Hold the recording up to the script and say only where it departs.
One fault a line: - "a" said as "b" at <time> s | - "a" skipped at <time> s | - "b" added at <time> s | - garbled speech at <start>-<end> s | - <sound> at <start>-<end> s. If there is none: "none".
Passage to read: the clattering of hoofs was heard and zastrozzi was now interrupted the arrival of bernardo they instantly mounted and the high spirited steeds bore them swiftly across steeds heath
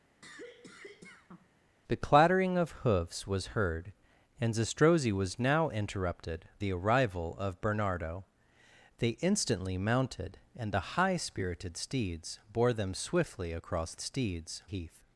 - cough at 0.2-1.5 s